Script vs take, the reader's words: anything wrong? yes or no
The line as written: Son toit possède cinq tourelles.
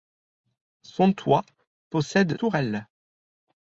yes